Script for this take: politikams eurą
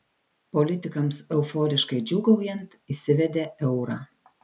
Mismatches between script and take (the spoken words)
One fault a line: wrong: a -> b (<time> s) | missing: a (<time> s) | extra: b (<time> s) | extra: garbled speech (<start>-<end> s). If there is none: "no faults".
extra: euforiškai džiūgaujant įsivedė (1.4 s)